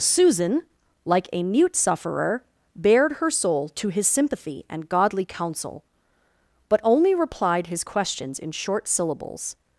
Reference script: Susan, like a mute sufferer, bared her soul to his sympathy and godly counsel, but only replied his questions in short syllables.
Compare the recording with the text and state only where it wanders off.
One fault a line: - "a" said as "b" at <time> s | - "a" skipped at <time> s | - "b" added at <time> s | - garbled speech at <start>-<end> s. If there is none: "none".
none